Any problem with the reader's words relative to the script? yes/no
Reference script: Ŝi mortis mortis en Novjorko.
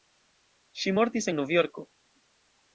yes